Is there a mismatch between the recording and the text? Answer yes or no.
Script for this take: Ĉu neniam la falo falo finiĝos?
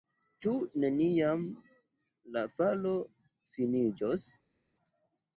yes